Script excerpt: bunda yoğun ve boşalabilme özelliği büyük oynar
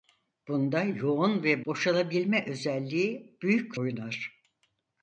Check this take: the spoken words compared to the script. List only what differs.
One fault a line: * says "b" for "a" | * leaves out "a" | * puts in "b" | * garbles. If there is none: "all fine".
all fine